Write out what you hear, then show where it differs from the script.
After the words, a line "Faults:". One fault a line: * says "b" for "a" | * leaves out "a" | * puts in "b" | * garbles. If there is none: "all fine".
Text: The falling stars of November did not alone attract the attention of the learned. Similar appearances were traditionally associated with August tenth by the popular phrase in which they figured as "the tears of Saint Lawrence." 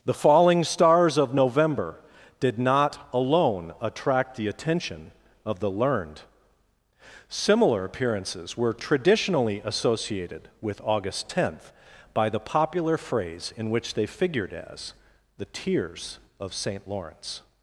The falling stars of November did not alone attract the attention of the learned. Similar appearances were traditionally associated with August tenth by the popular phrase in which they figured as "the tears of Saint Lawrence."
Faults:
all fine